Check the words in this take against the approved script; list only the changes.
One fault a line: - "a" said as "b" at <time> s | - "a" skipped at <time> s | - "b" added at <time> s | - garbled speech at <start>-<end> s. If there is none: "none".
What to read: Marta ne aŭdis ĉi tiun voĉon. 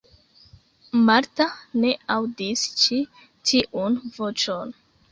none